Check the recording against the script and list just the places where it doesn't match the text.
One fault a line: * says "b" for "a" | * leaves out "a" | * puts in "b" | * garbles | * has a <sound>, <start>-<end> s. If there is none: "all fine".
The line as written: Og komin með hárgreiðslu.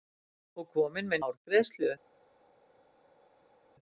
all fine